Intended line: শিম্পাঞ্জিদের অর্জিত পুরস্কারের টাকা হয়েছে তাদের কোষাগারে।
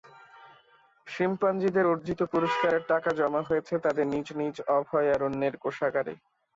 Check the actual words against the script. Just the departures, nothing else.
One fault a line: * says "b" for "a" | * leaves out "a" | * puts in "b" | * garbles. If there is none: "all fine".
* puts in "জমা"
* puts in "নিজ নিজ অভয়ারণ্যের"